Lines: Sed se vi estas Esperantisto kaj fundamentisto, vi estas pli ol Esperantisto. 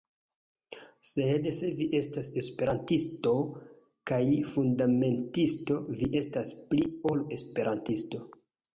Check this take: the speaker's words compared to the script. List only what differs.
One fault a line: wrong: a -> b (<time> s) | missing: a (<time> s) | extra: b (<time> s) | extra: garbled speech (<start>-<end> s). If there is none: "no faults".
no faults